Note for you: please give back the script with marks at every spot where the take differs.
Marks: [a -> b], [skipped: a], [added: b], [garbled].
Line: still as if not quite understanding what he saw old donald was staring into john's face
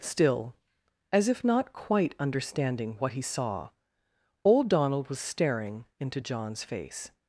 still as if not quite understanding what he saw old donald was staring into john's face